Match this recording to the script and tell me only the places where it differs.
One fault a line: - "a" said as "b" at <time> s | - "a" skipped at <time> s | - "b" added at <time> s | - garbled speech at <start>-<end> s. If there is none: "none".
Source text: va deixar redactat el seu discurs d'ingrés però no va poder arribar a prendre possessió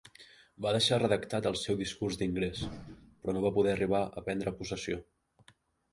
none